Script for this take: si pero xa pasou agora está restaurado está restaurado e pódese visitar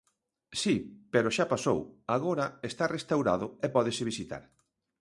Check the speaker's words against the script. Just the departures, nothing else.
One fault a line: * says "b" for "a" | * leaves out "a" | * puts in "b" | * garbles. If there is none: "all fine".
* leaves out "está restaurado"